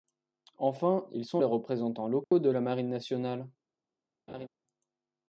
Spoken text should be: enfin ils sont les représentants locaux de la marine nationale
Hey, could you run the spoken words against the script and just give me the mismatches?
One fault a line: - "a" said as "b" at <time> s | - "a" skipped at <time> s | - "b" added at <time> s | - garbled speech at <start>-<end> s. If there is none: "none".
none